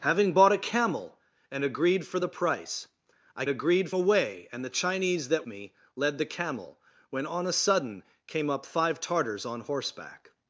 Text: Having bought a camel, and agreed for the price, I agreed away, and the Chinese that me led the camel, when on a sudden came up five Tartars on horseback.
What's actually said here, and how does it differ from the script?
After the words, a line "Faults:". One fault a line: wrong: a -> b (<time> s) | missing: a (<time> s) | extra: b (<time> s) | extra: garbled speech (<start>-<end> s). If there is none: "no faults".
Having bought a camel, and agreed for the price, I agreed away, and the Chinese that me led the camel, when on a sudden came up five Tartars on horseback.
Faults:
no faults